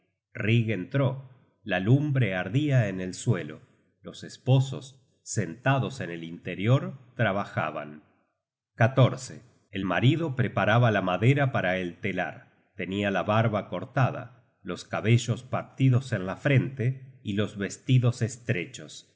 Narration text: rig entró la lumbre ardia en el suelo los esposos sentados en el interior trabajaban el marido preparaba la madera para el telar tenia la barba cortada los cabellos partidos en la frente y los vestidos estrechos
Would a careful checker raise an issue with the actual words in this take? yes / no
no